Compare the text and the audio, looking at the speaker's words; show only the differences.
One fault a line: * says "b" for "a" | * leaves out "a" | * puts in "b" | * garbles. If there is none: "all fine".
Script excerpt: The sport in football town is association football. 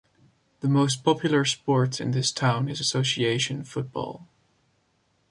* puts in "most popular"
* says "this" for "football"